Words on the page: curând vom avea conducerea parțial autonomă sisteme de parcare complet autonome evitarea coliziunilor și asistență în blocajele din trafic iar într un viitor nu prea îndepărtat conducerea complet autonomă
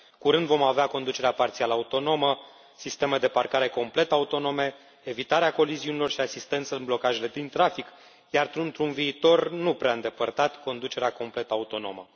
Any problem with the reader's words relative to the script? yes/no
no